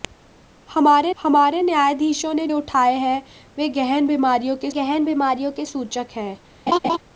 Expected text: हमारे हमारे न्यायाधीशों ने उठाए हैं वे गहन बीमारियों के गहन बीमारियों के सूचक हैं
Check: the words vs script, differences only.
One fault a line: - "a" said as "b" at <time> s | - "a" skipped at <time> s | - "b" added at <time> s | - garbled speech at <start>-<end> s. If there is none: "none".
none